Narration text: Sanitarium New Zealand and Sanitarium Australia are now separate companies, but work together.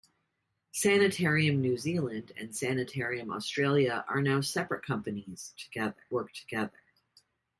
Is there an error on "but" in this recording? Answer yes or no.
yes